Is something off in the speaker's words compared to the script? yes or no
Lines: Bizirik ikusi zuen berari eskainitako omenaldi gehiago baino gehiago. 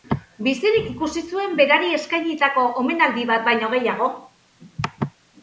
yes